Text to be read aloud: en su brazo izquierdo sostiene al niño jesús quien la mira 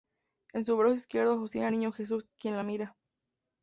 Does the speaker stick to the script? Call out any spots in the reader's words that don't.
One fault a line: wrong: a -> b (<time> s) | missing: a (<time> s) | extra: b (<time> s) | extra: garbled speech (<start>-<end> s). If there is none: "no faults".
no faults